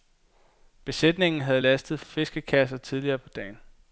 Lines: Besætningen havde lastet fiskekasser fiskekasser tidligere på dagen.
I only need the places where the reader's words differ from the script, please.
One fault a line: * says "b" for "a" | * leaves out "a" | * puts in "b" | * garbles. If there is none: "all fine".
* leaves out "fiskekasser"